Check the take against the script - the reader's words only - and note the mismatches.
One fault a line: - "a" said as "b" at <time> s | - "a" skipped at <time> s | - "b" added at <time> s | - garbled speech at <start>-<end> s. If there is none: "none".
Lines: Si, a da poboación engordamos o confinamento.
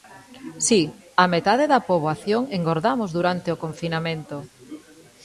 - "metade" added at 1.3 s
- "durante" added at 3.2 s